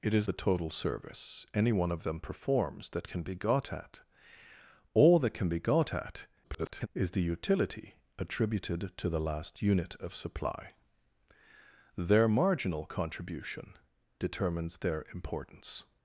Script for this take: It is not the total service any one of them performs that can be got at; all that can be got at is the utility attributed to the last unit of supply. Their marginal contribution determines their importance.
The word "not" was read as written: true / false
false